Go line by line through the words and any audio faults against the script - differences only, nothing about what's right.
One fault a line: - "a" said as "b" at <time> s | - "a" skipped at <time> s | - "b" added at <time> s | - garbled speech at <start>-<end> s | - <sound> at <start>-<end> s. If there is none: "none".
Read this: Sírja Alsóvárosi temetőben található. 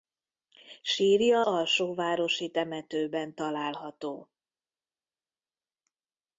none